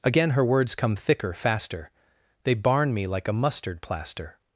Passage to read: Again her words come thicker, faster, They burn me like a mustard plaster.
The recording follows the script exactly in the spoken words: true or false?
false